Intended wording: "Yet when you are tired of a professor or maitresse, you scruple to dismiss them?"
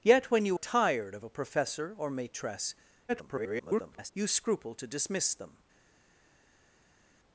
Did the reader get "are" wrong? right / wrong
wrong